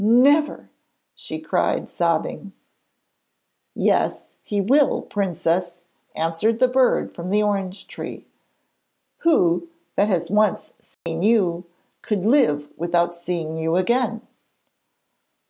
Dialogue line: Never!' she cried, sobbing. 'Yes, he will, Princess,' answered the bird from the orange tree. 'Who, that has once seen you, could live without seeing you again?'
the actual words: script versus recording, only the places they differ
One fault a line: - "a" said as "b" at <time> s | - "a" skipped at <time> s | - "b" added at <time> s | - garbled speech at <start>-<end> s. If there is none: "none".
none